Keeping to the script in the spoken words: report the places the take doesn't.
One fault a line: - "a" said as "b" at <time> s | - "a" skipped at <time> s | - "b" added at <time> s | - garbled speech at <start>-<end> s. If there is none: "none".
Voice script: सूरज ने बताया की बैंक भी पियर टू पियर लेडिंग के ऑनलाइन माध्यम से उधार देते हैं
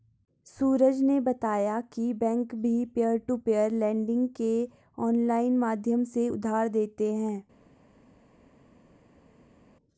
none